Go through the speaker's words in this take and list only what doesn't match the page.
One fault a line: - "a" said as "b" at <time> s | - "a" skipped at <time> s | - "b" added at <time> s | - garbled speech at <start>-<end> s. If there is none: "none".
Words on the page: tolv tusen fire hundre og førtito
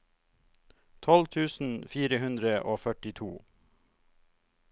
none